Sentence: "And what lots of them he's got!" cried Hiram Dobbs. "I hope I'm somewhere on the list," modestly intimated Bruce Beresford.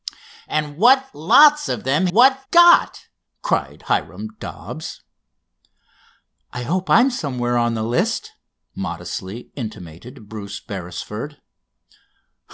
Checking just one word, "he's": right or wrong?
wrong